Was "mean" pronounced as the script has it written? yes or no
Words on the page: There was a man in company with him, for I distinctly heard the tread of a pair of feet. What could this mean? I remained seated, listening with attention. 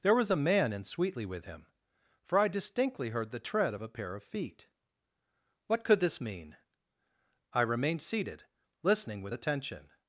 yes